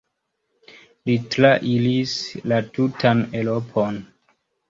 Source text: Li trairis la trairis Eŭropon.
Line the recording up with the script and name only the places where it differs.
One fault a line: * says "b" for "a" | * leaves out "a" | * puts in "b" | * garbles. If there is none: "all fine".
* says "tutan" for "trairis"